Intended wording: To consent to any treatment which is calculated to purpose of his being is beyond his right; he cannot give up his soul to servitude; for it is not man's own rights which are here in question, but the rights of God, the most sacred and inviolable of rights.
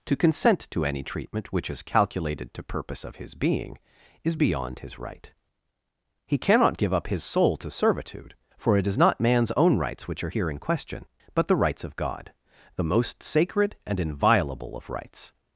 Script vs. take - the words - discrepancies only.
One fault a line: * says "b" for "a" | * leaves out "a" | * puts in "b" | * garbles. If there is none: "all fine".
all fine